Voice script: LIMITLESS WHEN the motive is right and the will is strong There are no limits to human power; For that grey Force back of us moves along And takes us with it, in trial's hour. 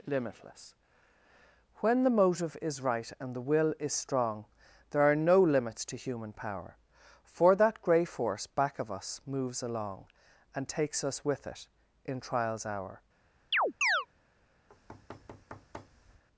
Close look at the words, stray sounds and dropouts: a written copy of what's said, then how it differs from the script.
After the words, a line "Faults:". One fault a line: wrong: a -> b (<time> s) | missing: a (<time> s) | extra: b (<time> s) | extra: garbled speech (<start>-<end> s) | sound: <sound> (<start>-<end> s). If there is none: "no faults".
LIMITLESS WHEN the motive is right and the will is strong There are no limits to human power; For that grey Force back of us moves along And takes us with it, in trial's hour.
Faults:
sound: chirp (13.5-14.1 s)
sound: thud (14.7-16.2 s)